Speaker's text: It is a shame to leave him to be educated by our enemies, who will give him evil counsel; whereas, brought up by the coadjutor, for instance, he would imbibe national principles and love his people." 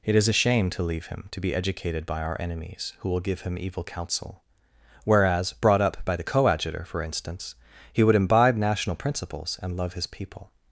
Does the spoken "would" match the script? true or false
true